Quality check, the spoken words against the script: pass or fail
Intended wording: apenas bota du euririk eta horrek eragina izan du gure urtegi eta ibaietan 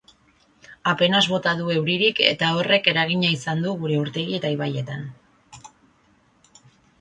pass